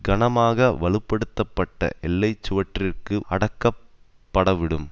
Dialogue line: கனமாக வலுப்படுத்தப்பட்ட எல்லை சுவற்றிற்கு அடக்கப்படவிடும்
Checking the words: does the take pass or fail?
pass